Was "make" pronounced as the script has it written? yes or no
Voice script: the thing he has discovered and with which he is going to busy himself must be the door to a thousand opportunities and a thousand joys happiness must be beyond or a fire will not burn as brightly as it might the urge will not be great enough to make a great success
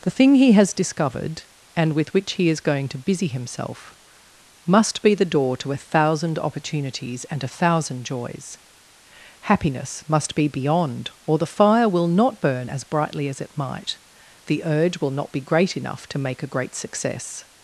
yes